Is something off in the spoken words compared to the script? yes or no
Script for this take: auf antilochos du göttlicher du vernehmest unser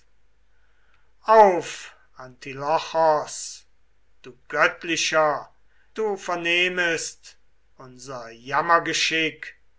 no